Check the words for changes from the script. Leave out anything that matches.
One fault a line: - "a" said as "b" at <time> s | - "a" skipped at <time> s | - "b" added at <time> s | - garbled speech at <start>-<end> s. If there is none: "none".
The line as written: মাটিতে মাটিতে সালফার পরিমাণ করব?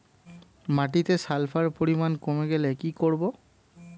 - "মাটিতে" skipped at 1.1 s
- "কমে গেলে কি" added at 2.2 s